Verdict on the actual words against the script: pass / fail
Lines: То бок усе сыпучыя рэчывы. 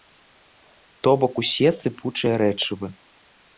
pass